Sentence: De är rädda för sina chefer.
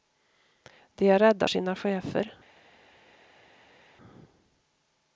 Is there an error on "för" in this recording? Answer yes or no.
yes